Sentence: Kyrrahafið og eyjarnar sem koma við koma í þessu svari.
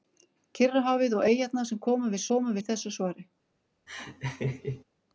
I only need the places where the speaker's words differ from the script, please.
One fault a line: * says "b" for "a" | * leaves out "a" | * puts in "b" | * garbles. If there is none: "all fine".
all fine